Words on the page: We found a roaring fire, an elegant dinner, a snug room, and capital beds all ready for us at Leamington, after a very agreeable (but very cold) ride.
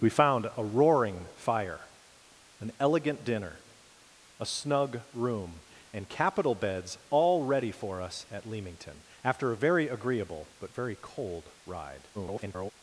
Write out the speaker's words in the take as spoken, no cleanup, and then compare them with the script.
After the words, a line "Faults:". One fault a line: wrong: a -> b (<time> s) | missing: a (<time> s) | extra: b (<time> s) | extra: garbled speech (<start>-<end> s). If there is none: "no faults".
We found a roaring fire, an elegant dinner, a snug room, and capital beds all ready for us at Leamington, after a very agreeable (but very cold) ride. [garbled]
Faults:
extra: garbled speech (12.1-12.7 s)